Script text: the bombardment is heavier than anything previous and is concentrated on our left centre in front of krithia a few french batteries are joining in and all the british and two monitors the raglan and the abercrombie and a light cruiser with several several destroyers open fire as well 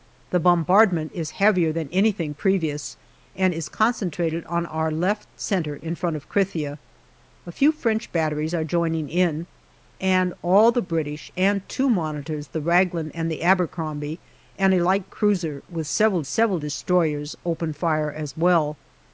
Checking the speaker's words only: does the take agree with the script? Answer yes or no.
yes